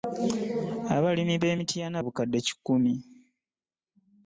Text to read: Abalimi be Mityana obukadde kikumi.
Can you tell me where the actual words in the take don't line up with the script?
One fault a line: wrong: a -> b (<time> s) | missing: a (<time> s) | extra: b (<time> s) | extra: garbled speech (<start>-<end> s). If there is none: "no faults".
no faults